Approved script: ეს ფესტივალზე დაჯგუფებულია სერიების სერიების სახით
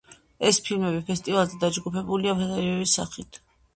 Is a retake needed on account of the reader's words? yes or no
yes